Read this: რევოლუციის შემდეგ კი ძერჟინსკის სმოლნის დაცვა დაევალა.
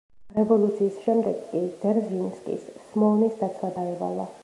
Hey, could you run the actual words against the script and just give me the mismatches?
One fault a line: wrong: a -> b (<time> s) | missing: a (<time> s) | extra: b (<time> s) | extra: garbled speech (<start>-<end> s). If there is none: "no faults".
no faults